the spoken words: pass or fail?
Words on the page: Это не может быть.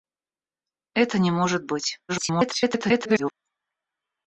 fail